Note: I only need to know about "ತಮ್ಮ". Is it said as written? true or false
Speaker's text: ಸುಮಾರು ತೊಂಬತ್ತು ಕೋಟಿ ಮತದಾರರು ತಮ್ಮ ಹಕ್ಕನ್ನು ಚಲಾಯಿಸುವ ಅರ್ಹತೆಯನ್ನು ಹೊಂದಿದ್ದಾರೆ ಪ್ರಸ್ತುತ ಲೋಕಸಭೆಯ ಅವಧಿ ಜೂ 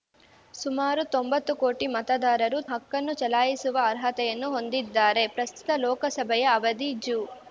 false